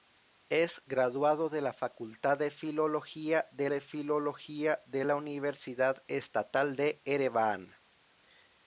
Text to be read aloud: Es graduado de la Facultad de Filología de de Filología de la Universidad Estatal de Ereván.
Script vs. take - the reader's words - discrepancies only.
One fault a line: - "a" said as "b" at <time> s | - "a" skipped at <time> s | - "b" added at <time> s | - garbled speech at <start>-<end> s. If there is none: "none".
none